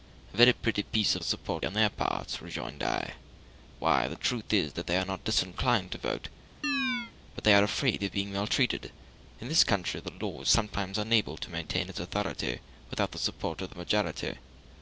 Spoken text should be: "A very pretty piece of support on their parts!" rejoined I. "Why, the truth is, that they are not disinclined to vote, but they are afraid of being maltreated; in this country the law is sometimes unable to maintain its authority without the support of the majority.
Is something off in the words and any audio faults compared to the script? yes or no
yes